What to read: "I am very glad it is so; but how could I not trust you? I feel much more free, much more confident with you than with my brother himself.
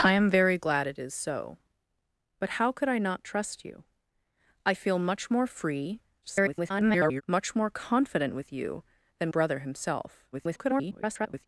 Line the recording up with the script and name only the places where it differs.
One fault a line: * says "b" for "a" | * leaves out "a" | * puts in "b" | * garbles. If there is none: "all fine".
* garbles
* leaves out "with my"
* garbles